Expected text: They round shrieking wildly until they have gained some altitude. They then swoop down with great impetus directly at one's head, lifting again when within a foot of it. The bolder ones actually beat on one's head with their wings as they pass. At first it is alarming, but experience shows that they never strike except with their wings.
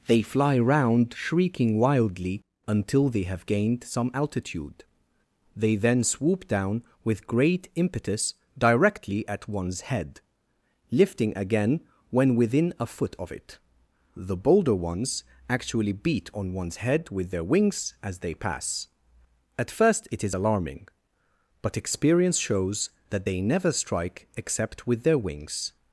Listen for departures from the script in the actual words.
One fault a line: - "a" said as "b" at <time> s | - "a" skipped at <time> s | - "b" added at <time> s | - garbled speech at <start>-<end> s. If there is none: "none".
- "fly" added at 0.2 s